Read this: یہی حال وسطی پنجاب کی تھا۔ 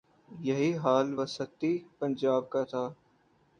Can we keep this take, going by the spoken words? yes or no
no